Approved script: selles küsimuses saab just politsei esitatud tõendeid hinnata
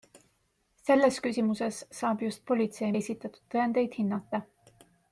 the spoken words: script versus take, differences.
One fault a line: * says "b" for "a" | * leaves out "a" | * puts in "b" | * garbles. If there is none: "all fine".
all fine